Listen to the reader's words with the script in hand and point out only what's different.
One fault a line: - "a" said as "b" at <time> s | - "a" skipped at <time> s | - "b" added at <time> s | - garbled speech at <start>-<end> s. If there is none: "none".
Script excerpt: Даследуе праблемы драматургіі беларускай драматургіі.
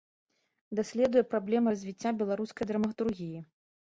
- "драматургіі" said as "развіцця" at 1.7 s